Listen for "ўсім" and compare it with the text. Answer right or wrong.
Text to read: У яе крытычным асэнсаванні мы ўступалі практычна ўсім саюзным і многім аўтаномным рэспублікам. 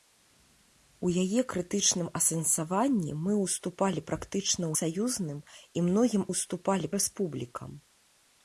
wrong